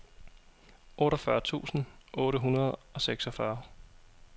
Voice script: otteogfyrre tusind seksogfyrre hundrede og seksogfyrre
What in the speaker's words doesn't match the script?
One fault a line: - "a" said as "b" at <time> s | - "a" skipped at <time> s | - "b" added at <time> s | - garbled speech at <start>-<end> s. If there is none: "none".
- "seksogfyrre" said as "otte" at 2.1 s